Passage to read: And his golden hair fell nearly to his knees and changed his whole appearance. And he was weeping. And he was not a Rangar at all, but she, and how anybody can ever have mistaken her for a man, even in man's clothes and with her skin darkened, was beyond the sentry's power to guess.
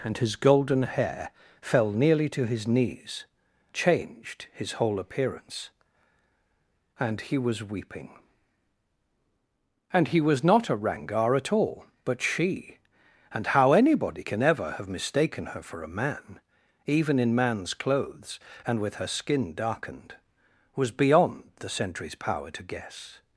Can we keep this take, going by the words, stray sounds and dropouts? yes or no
no